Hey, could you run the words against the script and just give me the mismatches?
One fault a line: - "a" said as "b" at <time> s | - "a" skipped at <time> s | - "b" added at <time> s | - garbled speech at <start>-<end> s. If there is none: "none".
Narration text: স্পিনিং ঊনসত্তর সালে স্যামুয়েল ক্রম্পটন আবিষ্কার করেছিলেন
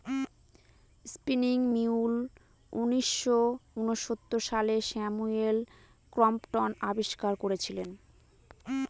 - "মিউল উনিশশো" added at 1.7 s